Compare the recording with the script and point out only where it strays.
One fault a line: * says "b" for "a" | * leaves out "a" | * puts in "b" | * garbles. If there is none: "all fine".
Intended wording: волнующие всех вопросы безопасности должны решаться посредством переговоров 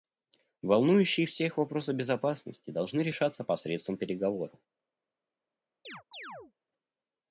all fine